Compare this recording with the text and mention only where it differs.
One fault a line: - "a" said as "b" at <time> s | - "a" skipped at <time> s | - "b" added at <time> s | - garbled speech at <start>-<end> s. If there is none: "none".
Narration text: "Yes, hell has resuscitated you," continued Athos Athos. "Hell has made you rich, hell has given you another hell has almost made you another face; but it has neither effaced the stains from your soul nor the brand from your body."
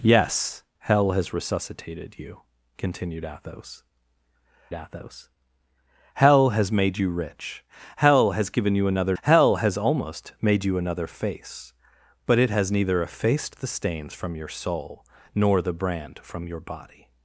none